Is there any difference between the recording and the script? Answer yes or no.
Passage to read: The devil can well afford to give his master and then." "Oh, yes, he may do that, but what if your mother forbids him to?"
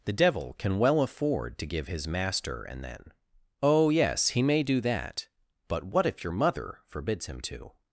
no